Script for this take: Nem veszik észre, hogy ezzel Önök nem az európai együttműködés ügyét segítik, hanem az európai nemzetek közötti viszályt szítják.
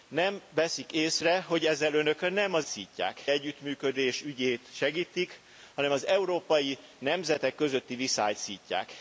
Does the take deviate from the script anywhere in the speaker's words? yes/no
yes